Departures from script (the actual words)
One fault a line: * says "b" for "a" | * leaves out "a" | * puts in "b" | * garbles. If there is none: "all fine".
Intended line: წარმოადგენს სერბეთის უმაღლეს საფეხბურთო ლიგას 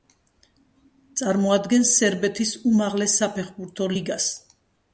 all fine